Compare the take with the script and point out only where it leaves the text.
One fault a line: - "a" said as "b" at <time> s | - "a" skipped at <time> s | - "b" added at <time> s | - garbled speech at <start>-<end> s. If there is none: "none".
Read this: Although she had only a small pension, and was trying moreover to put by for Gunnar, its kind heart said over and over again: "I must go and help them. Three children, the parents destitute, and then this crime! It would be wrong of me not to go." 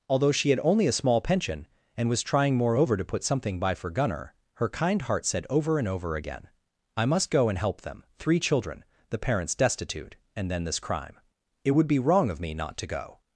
- "something" added at 3.2 s
- "its" said as "her" at 4.5 s